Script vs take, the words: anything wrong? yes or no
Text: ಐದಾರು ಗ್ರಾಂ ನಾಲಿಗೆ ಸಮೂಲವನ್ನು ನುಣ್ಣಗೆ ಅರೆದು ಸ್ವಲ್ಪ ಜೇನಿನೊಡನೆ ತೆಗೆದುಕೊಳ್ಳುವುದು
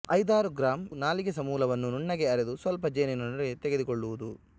no